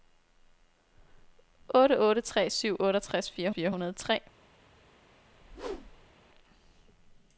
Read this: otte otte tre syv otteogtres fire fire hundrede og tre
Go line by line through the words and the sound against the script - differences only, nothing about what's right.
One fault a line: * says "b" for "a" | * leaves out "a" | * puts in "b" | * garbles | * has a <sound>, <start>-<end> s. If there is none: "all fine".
* has a whoosh, 5.3-6.1 s